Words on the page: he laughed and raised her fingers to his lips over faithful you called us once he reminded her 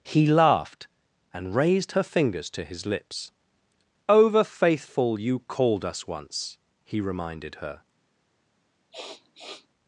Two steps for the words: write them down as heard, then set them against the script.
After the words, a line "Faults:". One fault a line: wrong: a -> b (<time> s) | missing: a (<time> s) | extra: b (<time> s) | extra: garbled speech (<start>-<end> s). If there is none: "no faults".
he laughed and raised her fingers to his lips over faithful you called us once he reminded her
Faults:
no faults